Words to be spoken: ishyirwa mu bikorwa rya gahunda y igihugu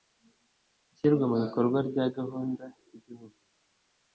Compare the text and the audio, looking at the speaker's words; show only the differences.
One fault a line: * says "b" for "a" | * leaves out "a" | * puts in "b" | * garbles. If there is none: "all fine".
all fine